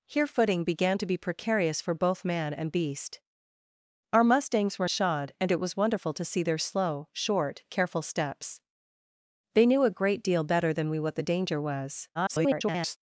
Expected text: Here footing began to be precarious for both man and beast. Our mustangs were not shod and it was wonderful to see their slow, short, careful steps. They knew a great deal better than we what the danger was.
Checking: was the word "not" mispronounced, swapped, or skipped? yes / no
yes